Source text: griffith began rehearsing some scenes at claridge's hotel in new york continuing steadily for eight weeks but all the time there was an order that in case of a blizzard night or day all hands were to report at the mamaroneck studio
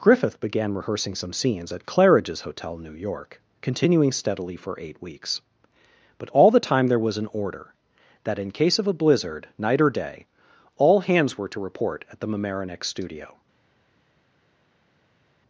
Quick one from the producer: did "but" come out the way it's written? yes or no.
yes